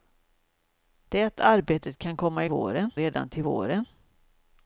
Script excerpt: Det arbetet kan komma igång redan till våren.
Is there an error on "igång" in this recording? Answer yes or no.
yes